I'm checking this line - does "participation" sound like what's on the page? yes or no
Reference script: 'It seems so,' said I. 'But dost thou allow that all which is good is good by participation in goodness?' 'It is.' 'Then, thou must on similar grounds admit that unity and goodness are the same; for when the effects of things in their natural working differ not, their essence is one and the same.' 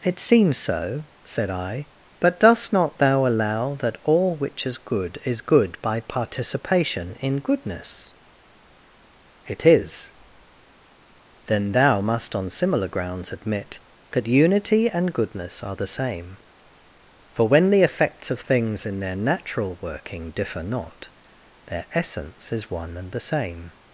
yes